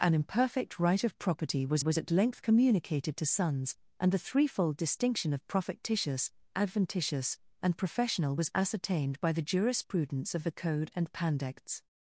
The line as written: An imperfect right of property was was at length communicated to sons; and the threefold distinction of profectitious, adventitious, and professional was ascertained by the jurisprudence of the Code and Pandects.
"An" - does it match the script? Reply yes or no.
yes